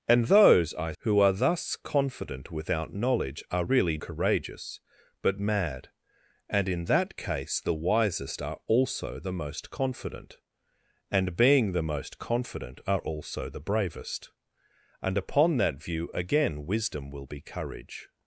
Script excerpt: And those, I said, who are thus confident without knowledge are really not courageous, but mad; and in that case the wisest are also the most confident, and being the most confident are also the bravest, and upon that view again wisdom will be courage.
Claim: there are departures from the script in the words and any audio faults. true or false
true